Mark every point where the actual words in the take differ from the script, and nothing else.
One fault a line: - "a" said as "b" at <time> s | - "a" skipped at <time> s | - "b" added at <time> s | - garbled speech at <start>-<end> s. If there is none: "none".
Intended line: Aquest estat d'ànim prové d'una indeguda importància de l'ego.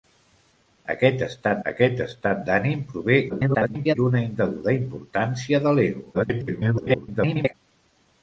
- "aquest estat" added at 1.7 s
- garbled speech at 3.3-4.0 s
- garbled speech at 6.1-7.5 s